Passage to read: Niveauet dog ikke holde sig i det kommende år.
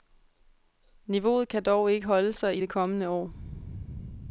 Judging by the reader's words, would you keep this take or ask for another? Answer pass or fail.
fail